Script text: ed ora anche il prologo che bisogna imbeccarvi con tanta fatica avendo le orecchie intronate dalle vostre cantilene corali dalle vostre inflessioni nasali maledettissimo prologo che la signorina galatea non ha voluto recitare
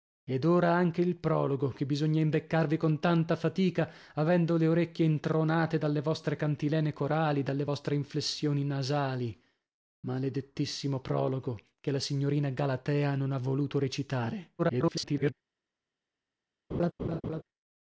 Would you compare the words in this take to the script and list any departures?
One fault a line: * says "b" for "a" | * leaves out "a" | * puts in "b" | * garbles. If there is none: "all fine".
* garbles